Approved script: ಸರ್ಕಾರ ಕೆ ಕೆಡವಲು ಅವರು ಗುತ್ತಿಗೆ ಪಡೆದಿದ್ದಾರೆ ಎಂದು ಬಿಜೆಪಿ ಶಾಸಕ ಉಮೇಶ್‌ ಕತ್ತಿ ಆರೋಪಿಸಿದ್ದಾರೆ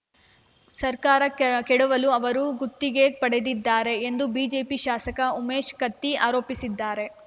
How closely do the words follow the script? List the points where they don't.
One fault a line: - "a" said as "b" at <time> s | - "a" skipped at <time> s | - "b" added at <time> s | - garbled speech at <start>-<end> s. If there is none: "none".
none